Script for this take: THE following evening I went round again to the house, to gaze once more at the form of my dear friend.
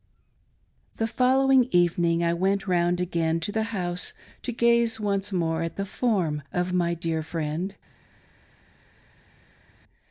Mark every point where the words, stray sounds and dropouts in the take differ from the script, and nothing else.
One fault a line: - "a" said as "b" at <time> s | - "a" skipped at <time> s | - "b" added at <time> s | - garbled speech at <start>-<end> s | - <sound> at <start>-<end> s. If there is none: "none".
none